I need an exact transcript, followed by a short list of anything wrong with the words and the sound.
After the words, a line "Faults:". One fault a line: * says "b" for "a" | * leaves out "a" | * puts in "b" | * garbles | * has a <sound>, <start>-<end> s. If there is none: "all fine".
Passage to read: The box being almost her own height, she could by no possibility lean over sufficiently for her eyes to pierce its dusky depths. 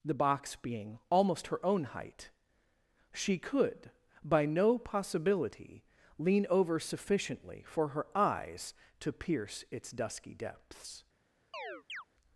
The box being almost her own height, she could by no possibility lean over sufficiently for her eyes to pierce its dusky depths.
Faults:
* has a chirp, 11.5-12.0 s